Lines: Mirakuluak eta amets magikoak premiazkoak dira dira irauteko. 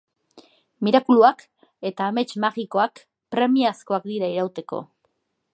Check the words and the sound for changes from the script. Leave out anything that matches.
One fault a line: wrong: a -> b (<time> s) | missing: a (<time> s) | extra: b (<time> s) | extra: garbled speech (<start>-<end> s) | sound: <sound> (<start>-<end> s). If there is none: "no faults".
missing: dira (4.3 s)